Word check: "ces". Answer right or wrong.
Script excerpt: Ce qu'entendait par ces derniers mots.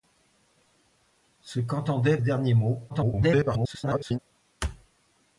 wrong